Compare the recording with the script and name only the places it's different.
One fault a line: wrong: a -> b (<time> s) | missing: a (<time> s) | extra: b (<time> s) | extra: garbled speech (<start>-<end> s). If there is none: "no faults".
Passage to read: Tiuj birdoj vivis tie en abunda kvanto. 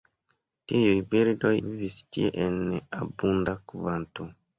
no faults